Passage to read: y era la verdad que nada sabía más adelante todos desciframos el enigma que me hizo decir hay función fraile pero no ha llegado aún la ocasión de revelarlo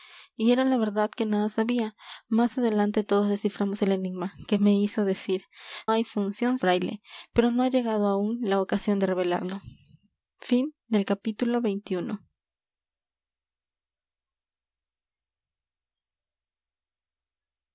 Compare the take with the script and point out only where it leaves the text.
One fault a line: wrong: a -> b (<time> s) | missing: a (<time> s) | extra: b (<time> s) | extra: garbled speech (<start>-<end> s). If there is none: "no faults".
no faults